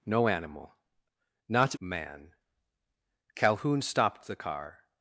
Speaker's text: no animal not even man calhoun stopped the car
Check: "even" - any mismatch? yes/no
yes